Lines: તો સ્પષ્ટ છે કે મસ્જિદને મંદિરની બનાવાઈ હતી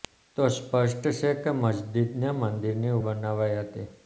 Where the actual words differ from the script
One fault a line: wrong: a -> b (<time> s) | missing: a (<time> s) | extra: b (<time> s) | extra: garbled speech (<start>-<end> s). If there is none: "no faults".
no faults